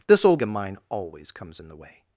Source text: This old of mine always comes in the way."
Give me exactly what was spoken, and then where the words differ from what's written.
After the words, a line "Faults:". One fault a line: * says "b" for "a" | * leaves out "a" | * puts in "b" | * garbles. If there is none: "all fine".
This old of mine always comes in the way."
Faults:
all fine